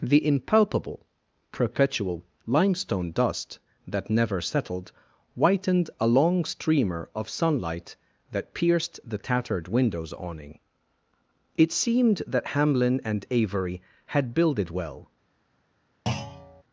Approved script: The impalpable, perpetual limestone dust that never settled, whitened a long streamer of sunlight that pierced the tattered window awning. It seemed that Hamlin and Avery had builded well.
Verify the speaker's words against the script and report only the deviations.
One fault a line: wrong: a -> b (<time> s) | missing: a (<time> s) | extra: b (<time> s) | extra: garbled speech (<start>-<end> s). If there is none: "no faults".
wrong: window -> windows (9.7 s)